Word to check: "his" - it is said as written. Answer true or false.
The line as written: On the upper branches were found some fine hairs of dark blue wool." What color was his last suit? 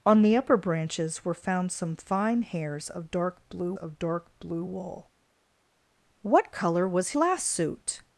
false